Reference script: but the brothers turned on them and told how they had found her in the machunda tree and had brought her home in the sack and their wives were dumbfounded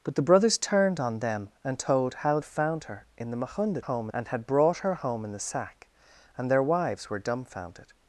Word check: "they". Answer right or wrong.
wrong